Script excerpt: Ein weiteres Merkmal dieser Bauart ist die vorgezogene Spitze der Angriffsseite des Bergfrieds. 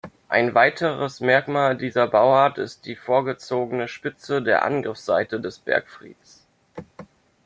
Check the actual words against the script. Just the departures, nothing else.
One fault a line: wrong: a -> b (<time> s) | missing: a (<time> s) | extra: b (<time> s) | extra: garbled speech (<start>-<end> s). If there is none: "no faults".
no faults